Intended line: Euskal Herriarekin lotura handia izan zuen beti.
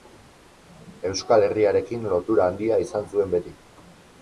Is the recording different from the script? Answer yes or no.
no